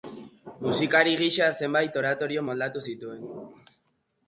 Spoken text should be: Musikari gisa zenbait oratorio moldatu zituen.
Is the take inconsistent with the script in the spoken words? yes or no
no